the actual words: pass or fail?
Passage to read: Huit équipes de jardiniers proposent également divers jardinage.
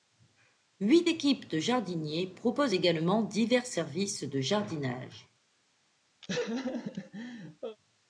fail